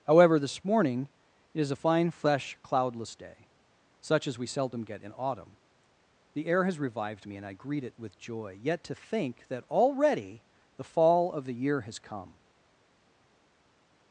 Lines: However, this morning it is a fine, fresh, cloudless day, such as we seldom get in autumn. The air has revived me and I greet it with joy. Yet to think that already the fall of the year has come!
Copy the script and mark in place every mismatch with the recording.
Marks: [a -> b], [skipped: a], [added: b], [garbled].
However, this morning it is a fine, fresh, cloudless day, such as we seldom get in autumn. The air has revived me and I greet it with joy. Yet to think that already the fall of the year has come!